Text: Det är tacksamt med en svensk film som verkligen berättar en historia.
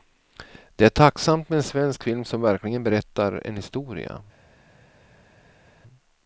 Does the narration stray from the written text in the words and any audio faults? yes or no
no